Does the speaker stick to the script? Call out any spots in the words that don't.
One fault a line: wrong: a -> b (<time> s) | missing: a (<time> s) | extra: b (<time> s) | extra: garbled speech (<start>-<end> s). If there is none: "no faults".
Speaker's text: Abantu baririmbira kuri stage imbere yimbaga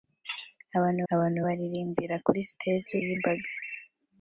extra: abantu (1.1 s)
missing: imbere (3.0 s)